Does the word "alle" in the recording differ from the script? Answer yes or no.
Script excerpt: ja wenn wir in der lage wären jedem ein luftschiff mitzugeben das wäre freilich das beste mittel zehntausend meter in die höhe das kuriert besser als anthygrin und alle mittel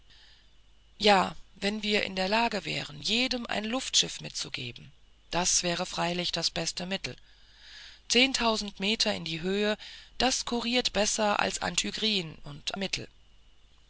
yes